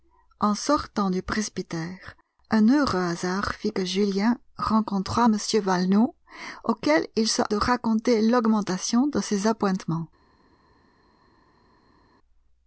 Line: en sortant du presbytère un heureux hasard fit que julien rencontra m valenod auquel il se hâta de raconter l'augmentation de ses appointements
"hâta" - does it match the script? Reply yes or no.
no